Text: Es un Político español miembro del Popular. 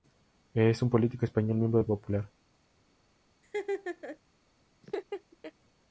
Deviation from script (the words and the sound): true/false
true